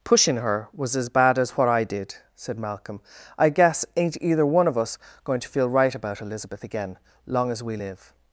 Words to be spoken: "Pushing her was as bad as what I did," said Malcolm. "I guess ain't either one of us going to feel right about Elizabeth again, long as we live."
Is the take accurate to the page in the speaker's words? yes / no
yes